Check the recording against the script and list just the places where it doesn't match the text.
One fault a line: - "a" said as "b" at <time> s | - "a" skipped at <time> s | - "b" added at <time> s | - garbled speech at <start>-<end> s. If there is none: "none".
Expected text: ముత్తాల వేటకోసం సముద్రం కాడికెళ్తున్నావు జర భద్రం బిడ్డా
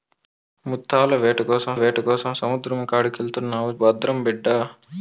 - "వేటకోసం" added at 1.7 s
- "జర" skipped at 3.7 s